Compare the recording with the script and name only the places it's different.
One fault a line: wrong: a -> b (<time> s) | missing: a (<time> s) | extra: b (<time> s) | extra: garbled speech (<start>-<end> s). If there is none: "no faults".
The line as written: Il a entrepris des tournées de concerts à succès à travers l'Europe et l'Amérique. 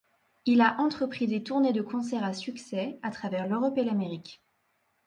no faults